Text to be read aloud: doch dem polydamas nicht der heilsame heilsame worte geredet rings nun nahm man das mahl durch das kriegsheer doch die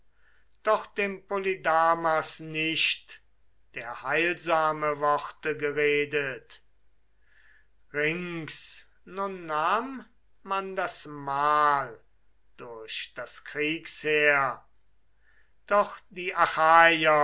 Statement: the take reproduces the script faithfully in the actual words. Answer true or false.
false